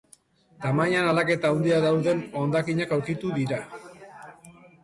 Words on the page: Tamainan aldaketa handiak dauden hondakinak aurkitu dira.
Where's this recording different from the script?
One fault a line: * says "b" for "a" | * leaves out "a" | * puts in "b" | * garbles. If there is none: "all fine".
all fine